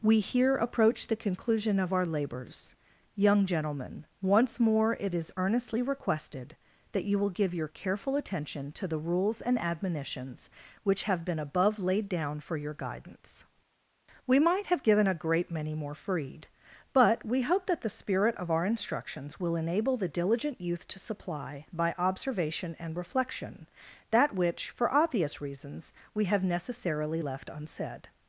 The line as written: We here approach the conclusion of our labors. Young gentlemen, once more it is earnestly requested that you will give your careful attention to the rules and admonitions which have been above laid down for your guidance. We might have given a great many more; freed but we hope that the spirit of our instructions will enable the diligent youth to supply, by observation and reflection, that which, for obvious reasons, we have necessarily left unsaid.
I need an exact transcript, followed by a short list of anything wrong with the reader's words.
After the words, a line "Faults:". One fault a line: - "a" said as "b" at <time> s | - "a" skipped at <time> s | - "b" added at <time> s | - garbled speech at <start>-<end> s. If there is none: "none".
We here approach the conclusion of our labors. Young gentlemen, once more it is earnestly requested that you will give your careful attention to the rules and admonitions which have been above laid down for your guidance. We might have given a great many more; freed but we hope that the spirit of our instructions will enable the diligent youth to supply, by observation and reflection, that which, for obvious reasons, we have necessarily left unsaid.
Faults:
none